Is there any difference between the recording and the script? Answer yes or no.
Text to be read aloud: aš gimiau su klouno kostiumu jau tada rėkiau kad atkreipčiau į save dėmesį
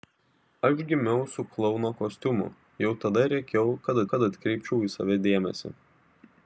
yes